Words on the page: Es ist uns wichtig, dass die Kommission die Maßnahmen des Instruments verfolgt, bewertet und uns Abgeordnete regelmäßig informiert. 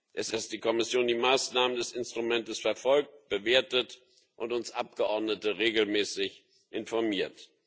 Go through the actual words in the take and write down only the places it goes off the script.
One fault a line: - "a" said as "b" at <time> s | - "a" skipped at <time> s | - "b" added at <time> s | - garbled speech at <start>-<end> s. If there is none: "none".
- "ist uns wichtig" skipped at 0.3 s